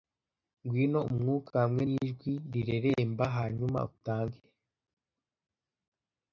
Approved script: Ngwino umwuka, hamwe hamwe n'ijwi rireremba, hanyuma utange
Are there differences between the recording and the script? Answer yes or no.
yes